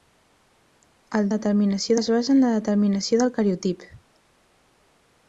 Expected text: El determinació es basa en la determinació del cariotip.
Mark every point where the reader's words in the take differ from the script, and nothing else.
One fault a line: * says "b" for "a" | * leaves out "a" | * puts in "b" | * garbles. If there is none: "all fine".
all fine